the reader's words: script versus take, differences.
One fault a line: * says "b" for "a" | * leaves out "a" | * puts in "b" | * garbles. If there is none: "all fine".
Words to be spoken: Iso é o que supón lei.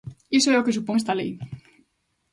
* puts in "esta"